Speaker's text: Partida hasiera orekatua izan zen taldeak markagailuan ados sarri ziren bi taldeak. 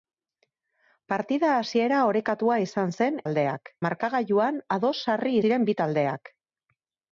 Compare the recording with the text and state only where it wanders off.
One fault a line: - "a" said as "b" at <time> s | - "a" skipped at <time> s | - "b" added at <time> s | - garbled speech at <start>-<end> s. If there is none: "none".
none